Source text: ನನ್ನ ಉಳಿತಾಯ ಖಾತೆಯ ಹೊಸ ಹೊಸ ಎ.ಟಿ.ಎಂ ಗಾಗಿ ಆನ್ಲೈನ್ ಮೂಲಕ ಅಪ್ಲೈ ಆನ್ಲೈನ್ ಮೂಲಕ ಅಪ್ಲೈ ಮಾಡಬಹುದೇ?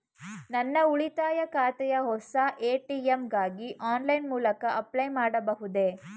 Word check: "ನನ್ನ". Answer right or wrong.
right